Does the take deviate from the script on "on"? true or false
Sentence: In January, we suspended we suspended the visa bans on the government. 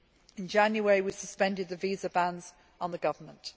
false